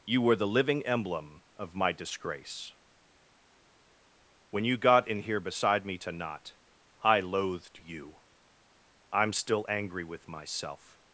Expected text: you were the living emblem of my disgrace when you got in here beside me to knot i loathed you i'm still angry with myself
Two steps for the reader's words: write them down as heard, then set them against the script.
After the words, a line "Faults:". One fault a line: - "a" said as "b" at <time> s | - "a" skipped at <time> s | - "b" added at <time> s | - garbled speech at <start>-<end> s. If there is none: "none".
you were the living emblem of my disgrace when you got in here beside me to knot i loathed you i'm still angry with myself
Faults:
none